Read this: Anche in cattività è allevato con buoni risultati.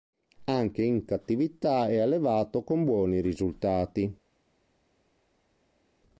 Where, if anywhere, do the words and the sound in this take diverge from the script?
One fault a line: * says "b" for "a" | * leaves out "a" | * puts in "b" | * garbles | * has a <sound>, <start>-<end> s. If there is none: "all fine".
all fine